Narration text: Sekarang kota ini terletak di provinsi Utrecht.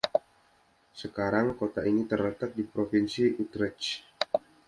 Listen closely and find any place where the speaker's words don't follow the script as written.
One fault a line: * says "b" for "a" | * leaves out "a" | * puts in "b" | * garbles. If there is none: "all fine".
all fine